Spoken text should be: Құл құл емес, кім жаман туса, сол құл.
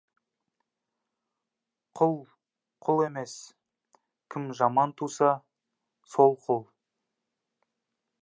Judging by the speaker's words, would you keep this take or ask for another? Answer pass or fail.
pass